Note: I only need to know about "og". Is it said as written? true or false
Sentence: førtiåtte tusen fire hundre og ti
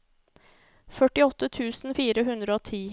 true